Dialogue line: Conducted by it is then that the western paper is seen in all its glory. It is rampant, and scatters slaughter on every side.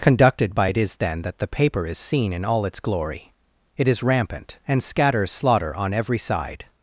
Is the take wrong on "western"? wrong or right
wrong